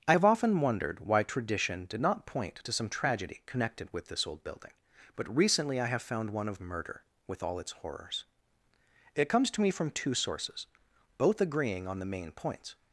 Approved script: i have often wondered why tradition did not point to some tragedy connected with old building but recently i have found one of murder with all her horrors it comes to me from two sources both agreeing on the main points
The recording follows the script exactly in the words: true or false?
false